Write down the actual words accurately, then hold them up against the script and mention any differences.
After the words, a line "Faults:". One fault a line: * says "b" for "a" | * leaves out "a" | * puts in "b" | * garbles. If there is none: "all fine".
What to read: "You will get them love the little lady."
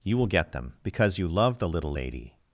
"You will get them because you love the little lady."
Faults:
* puts in "because you"